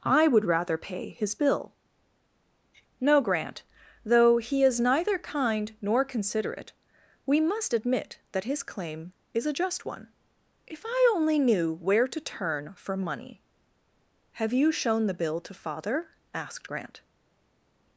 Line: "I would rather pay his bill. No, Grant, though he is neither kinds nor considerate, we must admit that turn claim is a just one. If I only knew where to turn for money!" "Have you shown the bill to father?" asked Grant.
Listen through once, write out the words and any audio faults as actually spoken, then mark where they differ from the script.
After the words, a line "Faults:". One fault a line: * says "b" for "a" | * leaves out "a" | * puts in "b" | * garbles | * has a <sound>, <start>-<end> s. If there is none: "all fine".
"I would rather pay his bill. No, Grant, though he is neither kind nor considerate, we must admit that his claim is a just one. If I only knew where to turn for money!" "Have you shown the bill to father?" asked Grant.
Faults:
* says "kind" for "kinds"
* says "his" for "turn"